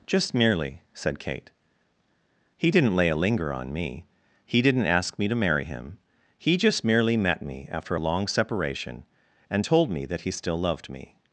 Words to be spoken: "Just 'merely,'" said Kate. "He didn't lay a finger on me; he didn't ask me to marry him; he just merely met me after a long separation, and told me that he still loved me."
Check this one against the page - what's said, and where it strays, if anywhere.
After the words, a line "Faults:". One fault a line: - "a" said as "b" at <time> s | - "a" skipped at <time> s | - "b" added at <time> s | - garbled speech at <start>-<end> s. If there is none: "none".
"Just 'merely,'" said Kate. "He didn't lay a linger on me; he didn't ask me to marry him; he just merely met me after a long separation, and told me that he still loved me."
Faults:
- "finger" said as "linger" at 3.1 s